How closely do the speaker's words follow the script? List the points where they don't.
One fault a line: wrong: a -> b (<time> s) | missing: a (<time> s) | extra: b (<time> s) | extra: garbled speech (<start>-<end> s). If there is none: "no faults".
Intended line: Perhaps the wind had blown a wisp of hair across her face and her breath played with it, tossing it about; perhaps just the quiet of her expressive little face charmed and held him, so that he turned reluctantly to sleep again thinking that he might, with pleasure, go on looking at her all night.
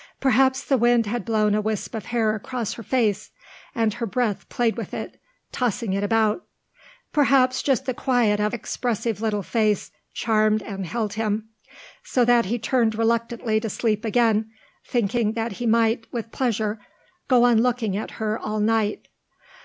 missing: her (8.6 s)